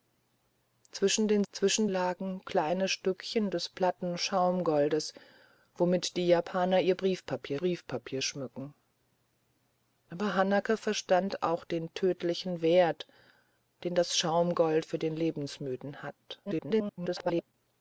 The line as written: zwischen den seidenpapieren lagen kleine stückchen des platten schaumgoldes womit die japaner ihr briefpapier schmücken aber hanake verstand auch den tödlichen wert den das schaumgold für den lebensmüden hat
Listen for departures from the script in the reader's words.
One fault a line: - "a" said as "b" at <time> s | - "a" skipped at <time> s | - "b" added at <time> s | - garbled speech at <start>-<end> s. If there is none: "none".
- "seidenpapieren" said as "zwischen" at 1.5 s
- "briefpapier" added at 7.6 s
- garbled speech at 16.5-17.5 s